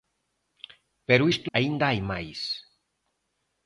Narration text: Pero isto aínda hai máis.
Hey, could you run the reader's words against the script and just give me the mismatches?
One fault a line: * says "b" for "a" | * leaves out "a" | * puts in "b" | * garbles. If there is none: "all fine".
all fine